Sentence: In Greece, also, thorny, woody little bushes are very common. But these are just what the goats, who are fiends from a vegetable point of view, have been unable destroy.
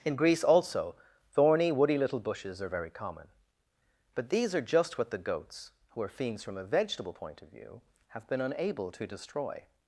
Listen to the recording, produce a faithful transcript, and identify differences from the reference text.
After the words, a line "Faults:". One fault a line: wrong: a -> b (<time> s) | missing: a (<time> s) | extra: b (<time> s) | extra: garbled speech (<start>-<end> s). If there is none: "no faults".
In Greece, also, thorny, woody little bushes are very common. But these are just what the goats, who are fiends from a vegetable point of view, have been unable to destroy.
Faults:
extra: to (8.9 s)